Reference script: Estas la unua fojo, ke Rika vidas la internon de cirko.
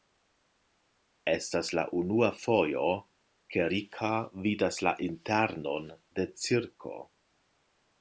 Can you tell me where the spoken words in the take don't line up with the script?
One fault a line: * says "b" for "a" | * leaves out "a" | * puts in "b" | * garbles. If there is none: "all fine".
all fine